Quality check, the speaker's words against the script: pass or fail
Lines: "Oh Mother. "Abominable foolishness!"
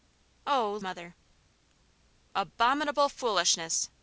pass